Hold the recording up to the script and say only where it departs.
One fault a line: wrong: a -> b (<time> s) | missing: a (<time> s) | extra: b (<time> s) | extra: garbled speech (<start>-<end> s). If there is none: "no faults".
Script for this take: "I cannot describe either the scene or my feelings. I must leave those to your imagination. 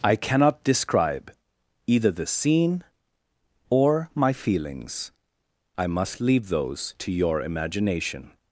no faults